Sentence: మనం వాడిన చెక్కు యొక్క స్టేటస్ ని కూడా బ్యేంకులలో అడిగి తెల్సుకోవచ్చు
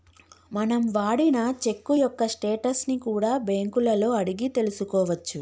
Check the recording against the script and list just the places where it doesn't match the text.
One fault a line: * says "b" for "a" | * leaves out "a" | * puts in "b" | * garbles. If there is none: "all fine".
all fine